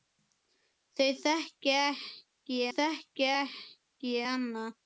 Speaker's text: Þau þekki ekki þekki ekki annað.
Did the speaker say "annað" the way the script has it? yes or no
yes